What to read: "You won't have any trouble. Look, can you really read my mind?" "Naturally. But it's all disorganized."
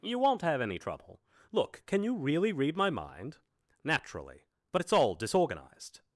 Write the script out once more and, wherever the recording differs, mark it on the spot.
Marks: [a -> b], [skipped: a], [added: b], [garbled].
"You won't have any trouble. Look, can you really read my mind?" "Naturally. But it's all disorganized."